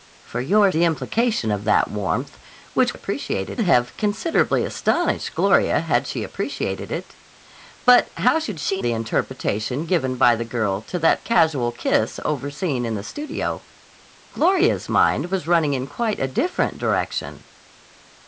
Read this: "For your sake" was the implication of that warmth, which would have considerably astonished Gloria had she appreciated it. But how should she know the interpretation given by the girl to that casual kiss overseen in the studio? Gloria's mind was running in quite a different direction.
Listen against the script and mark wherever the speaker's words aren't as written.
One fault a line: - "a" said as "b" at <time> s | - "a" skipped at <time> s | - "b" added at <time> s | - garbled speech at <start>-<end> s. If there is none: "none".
- "sake was" skipped at 0.7 s
- "would" said as "appreciated" at 2.9 s
- "know" skipped at 8.8 s